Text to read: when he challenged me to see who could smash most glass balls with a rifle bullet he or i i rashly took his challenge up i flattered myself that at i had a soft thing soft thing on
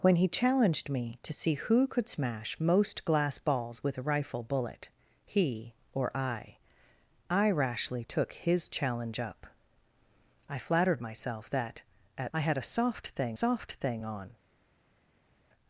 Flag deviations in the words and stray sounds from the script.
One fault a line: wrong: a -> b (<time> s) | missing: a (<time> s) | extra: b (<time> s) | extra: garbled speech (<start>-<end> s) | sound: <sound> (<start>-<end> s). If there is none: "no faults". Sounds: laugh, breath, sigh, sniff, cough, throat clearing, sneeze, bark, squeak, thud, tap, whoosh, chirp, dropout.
no faults